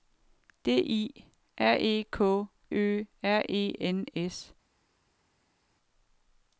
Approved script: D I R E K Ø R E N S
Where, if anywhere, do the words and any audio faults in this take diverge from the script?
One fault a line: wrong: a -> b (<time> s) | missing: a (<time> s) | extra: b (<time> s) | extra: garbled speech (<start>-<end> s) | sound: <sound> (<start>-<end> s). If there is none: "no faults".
no faults